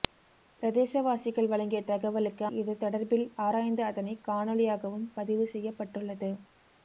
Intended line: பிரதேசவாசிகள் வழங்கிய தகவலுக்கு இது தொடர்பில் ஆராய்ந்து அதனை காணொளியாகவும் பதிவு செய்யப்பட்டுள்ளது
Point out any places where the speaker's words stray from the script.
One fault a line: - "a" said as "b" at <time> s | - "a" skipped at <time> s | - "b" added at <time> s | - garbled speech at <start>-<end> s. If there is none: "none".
none